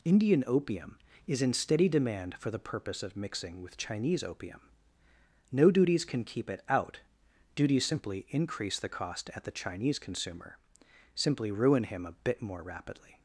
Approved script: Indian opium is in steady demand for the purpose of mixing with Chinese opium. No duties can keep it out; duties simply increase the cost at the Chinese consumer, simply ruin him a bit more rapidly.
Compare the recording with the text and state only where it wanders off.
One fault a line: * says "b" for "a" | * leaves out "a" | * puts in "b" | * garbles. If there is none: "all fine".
all fine